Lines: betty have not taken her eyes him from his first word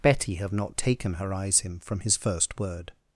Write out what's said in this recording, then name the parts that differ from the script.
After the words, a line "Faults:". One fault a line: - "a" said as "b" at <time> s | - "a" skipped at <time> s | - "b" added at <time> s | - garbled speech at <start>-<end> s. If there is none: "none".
betty have not taken her eyes him from his first word
Faults:
none